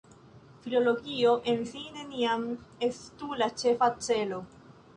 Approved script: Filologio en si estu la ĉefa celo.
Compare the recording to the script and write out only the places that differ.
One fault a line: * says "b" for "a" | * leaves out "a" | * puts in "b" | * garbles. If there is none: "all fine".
* puts in "neniam"